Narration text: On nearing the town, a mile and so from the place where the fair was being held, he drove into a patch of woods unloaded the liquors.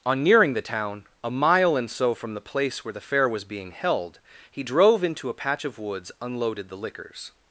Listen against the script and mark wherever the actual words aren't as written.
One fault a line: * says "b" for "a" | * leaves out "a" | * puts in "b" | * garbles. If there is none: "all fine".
all fine